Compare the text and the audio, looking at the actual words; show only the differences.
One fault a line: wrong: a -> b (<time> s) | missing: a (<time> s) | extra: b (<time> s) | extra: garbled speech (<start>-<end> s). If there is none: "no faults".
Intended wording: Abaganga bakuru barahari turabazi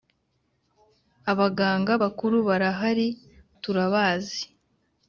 no faults